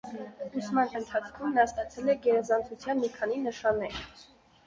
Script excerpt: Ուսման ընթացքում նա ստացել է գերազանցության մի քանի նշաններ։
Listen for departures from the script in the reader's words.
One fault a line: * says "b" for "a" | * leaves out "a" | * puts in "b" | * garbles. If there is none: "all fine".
all fine